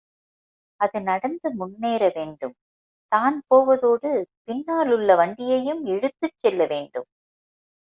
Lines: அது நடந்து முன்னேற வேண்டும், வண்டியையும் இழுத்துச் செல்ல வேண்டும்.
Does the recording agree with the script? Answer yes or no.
no